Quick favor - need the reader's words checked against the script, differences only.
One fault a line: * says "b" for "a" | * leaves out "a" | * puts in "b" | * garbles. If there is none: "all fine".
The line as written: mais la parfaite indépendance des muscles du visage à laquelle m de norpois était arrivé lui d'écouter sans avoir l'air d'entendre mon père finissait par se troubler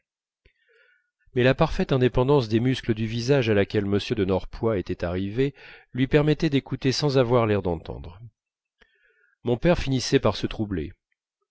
* puts in "permettait"